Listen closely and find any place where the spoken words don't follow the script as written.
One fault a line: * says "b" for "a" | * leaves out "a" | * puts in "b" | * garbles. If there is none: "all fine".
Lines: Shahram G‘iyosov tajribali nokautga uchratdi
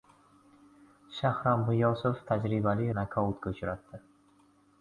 all fine